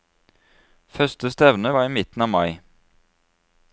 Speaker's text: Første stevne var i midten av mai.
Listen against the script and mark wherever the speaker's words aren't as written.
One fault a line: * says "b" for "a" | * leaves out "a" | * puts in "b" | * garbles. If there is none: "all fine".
all fine